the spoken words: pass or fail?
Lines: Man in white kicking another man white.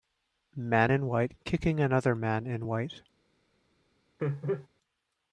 fail